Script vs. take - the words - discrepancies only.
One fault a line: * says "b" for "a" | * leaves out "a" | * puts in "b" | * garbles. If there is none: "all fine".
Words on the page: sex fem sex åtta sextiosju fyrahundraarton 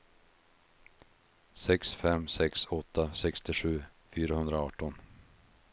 all fine